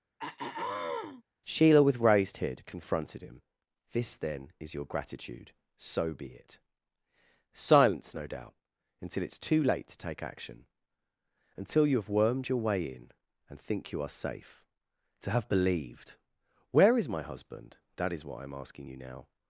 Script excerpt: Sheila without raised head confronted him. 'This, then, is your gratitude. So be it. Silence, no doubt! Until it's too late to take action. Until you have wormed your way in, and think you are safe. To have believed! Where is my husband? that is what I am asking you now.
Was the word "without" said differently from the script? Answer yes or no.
yes